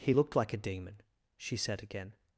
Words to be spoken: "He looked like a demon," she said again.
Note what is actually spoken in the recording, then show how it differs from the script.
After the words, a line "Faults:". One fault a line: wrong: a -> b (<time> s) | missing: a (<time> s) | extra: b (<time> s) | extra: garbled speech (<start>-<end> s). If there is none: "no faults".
"He looked like a demon," she said again.
Faults:
no faults